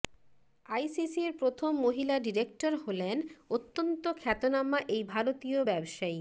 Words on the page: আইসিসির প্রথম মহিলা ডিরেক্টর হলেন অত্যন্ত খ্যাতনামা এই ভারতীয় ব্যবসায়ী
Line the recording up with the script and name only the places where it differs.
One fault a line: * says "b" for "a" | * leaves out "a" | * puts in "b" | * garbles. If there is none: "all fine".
all fine